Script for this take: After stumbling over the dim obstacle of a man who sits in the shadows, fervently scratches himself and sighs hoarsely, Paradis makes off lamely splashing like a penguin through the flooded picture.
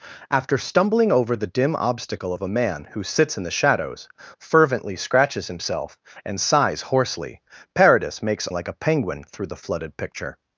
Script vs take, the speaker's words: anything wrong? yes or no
yes